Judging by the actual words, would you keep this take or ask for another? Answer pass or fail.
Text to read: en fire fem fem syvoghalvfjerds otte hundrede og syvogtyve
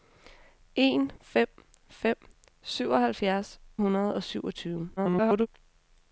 fail